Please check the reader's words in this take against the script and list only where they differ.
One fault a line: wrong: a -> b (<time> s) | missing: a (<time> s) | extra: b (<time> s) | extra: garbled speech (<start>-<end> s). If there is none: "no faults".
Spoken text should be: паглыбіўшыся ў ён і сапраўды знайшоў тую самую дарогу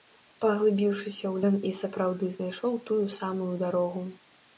no faults